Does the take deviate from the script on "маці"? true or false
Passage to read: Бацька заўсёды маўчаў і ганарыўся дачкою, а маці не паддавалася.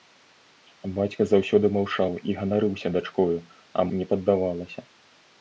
true